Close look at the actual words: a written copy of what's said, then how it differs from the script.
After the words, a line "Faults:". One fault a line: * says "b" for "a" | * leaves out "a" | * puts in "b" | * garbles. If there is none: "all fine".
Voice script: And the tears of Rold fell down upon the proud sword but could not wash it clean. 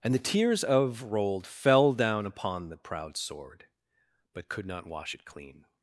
And the tears of Rold fell down upon the proud sword but could not wash it clean.
Faults:
all fine